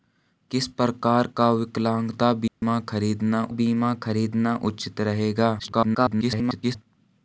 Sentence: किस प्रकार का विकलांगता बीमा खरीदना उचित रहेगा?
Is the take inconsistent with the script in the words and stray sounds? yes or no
yes